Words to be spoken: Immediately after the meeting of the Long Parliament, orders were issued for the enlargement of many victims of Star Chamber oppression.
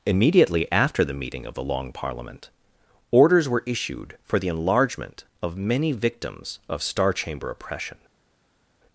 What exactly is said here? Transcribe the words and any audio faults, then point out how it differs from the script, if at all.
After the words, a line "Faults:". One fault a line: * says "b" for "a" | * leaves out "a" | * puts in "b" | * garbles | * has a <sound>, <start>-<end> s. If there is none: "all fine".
Immediately after the meeting of the Long Parliament, orders were issued for the enlargement of many victims of Star Chamber oppression.
Faults:
all fine